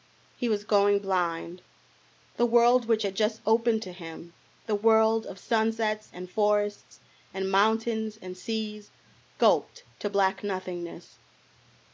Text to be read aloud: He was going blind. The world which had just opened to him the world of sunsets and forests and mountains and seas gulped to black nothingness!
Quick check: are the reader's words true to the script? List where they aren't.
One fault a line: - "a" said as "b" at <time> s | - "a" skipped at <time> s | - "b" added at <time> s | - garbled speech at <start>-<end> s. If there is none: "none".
none